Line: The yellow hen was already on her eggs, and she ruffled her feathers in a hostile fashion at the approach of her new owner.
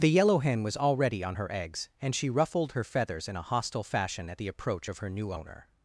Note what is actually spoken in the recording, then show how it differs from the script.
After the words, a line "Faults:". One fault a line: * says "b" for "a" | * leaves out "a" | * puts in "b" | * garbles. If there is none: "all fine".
The yellow hen was already on her eggs, and she ruffled her feathers in a hostile fashion at the approach of her new owner.
Faults:
all fine